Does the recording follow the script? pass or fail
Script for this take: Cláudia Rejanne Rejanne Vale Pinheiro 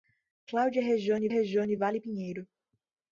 pass